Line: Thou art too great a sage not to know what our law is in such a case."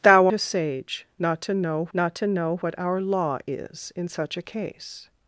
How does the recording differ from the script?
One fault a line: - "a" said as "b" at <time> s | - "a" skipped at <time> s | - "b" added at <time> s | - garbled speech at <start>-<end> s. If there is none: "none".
- "art too great a sage" said as "a sage not to know" at 0.3 s